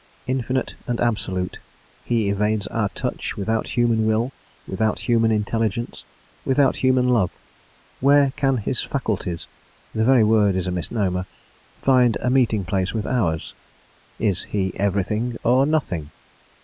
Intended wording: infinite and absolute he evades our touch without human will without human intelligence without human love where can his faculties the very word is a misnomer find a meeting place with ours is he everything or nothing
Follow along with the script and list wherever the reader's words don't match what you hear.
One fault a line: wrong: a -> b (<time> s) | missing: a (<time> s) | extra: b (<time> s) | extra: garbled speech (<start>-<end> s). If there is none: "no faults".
no faults